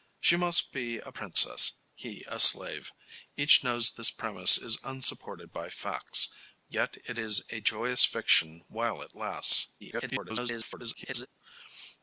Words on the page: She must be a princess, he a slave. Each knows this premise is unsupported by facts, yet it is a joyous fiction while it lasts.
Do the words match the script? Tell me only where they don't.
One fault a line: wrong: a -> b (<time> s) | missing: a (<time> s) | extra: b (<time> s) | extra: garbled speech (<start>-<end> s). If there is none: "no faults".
extra: garbled speech (9.8-11.3 s)